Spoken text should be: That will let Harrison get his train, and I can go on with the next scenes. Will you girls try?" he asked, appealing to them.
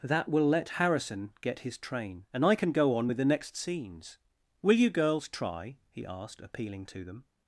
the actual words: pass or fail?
pass